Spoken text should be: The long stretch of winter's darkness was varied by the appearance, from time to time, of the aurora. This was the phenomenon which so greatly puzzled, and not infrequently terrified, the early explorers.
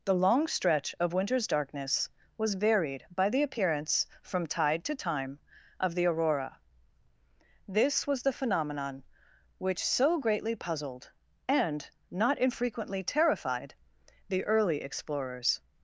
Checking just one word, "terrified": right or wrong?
right